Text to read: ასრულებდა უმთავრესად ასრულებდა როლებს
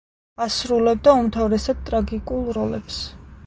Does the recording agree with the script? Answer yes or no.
no